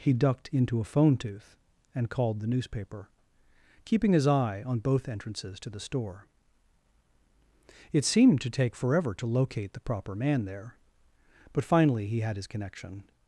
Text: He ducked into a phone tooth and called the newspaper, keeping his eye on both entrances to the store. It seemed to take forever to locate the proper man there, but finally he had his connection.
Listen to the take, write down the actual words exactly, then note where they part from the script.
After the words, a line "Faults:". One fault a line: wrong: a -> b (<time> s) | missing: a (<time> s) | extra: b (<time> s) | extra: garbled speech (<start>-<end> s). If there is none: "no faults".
He ducked into a phone tooth and called the newspaper, keeping his eye on both entrances to the store. It seemed to take forever to locate the proper man there, but finally he had his connection.
Faults:
no faults